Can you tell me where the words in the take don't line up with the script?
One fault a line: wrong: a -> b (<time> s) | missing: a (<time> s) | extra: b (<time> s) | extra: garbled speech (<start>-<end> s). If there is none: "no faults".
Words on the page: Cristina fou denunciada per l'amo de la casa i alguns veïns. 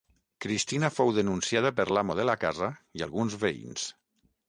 no faults